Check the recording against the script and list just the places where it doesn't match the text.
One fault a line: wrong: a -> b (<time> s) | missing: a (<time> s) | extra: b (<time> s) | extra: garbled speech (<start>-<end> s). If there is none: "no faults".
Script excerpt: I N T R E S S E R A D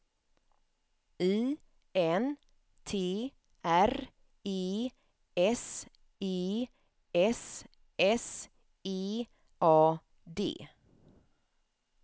extra: E (6.2 s)
extra: S (8.0 s)
missing: R (9.3 s)